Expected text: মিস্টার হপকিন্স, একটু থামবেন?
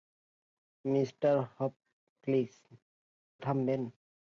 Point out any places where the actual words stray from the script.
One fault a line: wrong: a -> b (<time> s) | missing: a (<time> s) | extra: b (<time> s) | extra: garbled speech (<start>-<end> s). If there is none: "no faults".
missing: একটু (2.5 s)